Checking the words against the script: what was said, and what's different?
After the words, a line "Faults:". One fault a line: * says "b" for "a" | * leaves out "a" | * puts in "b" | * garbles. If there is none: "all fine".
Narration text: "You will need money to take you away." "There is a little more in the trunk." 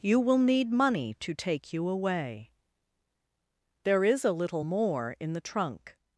"You will need money to take you away." "There is a little more in the trunk."
Faults:
all fine